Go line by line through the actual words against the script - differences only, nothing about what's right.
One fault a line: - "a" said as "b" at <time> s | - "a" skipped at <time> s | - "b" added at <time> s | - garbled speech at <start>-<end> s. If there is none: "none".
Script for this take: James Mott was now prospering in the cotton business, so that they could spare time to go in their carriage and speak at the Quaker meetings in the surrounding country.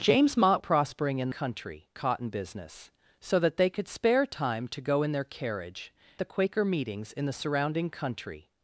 - "was now" skipped at 0.6 s
- "the" said as "country" at 1.3 s
- "and speak at" skipped at 5.9 s